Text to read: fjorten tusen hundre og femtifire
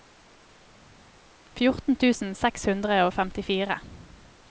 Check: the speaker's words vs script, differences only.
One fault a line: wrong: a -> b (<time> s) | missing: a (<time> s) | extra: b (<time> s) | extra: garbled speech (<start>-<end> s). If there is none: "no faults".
extra: seks (2.4 s)